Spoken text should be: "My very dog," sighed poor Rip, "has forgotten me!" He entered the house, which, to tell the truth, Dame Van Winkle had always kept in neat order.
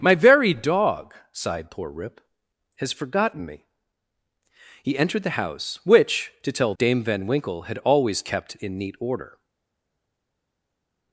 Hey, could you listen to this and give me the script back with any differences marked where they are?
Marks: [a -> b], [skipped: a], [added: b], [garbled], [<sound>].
"My very dog," sighed poor Rip, "has forgotten me!" He entered the house, which, to tell [skipped: the truth,] Dame Van Winkle had always kept in neat order.